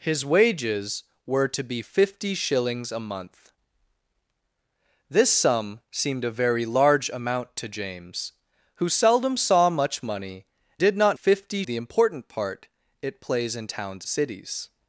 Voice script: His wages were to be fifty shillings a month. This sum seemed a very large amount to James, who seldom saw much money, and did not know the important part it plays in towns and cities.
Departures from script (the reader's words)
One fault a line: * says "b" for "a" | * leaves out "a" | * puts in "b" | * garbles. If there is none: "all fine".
* leaves out "and"
* says "fifty" for "know"
* leaves out "and"